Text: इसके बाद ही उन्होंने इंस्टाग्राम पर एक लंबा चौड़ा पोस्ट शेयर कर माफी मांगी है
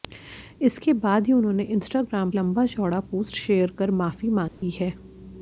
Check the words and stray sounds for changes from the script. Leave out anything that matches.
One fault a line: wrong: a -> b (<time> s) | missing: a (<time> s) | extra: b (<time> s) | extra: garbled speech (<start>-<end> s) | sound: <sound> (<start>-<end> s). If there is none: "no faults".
missing: पर एक (2.3 s)
sound: dropout (4.5-4.6 s)